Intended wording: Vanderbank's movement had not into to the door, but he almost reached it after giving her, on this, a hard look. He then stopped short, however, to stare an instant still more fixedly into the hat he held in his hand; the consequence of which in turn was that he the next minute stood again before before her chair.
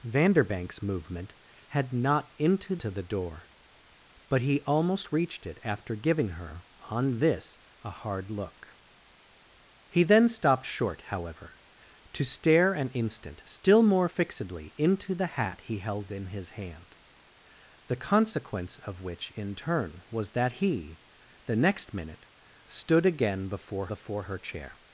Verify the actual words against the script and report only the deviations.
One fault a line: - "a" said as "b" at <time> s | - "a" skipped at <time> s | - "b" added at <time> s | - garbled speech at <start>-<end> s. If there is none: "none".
none